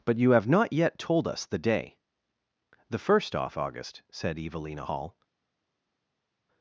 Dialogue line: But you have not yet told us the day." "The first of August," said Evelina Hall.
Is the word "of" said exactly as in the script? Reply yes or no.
no